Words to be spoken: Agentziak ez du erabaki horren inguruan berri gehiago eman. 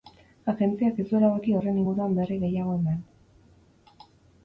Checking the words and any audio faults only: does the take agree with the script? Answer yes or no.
yes